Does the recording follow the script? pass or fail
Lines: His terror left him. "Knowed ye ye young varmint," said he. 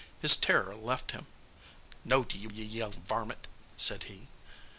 pass